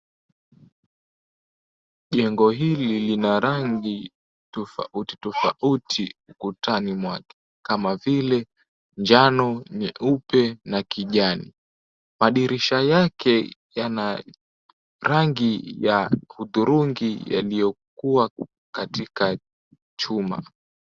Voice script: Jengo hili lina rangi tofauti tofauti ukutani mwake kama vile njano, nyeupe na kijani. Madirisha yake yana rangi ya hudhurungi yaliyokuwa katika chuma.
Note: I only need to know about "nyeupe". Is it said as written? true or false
true